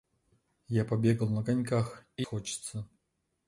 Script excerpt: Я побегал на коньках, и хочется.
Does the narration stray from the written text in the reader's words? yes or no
no